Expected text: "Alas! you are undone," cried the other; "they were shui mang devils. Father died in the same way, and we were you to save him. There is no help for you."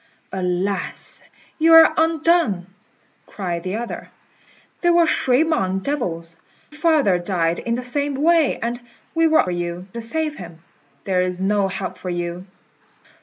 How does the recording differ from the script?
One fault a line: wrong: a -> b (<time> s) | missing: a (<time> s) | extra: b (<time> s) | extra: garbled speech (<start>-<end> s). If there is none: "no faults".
no faults